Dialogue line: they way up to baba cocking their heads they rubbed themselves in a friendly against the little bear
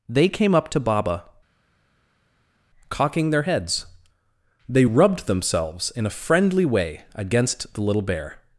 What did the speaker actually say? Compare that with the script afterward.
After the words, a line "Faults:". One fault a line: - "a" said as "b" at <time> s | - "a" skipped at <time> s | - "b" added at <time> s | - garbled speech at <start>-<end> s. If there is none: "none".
they came up to baba cocking their heads they rubbed themselves in a friendly way against the little bear
Faults:
- "way" said as "came" at 0.3 s
- "way" added at 6.6 s